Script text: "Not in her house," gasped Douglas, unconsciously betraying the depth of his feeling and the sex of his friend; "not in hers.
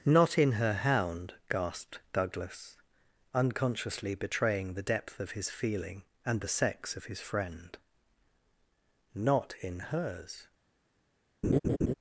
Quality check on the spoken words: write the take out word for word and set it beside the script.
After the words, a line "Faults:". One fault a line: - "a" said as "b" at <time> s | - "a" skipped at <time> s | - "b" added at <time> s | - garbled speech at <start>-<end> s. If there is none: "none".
"Not in her hound," gasped Douglas, unconsciously betraying the depth of his feeling and the sex of his friend; "not in hers.
Faults:
- "house" said as "hound" at 0.7 s